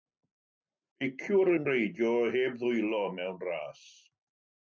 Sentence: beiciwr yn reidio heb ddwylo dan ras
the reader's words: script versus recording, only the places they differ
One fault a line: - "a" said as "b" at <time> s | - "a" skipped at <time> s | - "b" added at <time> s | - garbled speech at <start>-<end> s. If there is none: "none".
- "dan" said as "mewn" at 3.2 s